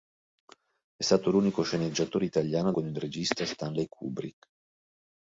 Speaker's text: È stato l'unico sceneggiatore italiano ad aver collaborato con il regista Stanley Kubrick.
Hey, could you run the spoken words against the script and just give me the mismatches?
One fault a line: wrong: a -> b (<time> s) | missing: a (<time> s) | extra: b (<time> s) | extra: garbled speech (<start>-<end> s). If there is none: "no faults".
missing: aver collaborato (2.8 s)